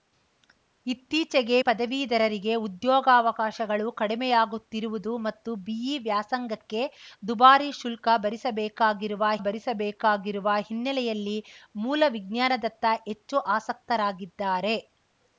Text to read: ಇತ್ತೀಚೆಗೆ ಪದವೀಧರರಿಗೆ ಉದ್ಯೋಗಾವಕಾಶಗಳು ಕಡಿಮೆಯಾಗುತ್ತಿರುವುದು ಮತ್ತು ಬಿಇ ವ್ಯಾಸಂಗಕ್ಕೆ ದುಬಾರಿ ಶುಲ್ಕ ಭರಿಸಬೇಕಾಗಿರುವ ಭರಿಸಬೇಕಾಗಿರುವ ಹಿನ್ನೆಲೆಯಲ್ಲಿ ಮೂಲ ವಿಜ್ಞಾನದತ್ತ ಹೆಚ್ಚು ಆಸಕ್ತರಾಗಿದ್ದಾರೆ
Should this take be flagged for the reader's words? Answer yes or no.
no